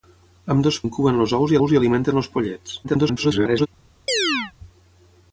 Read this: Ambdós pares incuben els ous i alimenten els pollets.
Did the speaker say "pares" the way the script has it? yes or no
no